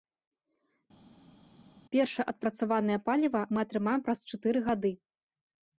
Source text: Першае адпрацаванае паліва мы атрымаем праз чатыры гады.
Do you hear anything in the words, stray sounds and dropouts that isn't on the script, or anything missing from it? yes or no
no